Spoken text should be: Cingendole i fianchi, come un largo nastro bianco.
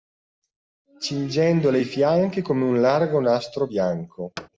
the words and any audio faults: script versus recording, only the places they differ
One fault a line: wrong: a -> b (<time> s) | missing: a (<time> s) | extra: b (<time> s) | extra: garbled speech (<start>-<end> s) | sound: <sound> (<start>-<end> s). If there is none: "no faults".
sound: thud (4.4-4.5 s)